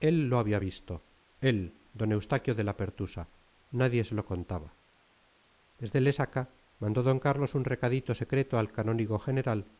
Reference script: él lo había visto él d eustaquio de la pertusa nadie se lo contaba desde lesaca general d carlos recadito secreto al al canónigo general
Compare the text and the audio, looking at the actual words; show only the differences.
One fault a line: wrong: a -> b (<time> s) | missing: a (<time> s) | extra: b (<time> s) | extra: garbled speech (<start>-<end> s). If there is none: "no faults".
wrong: general -> mandó (6.8 s)
extra: un (7.5 s)
missing: al (8.7 s)